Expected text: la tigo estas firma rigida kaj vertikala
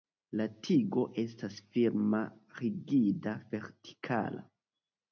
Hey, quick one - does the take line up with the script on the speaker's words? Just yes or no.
no